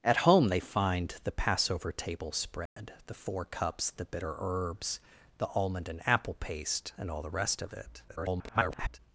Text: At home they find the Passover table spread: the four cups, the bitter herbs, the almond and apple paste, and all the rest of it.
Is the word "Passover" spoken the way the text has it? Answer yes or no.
yes